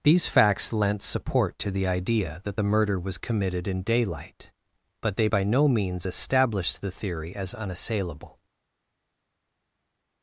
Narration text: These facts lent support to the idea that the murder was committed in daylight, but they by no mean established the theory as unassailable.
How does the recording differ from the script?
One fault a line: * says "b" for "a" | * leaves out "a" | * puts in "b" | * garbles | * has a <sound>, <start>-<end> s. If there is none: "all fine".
* says "means" for "mean"